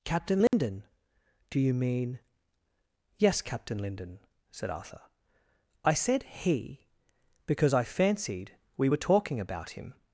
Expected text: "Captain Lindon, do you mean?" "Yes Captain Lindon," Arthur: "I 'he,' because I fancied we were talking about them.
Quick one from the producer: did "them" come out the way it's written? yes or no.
no